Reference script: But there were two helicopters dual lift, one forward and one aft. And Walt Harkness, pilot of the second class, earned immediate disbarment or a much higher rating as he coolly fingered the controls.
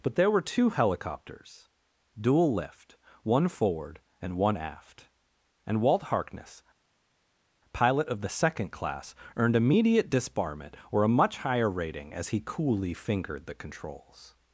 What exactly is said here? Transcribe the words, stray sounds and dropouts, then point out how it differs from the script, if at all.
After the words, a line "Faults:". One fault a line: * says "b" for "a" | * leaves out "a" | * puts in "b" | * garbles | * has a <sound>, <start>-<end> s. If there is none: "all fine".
But there were two helicopters dual lift, one forward and one aft. And Walt Harkness, pilot of the second class, earned immediate disbarment or a much higher rating as he coolly fingered the controls.
Faults:
all fine